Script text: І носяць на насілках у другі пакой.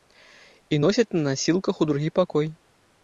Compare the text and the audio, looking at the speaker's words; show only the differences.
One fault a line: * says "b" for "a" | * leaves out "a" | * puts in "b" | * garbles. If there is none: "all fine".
all fine